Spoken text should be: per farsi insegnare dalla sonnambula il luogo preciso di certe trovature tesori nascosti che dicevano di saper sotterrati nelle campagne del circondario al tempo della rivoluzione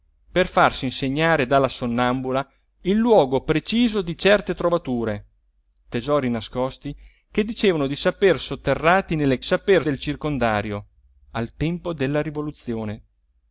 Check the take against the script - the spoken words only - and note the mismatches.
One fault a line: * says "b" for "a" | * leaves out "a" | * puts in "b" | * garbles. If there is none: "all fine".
* says "saper" for "campagne"